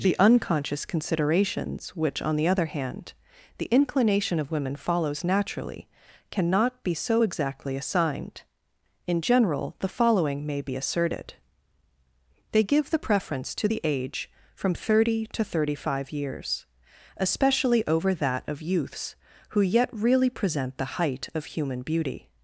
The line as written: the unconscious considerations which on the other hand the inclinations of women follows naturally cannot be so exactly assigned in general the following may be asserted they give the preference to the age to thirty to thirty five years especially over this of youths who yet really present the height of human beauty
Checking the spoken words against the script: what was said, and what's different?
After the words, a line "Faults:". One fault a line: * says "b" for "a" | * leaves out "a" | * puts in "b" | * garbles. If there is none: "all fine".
the unconscious considerations which on the other hand the inclination of women follows naturally cannot be so exactly assigned in general the following may be asserted they give the preference to the age from thirty to thirty five years especially over that of youths who yet really present the height of human beauty
Faults:
* says "inclination" for "inclinations"
* says "from" for "to"
* says "that" for "this"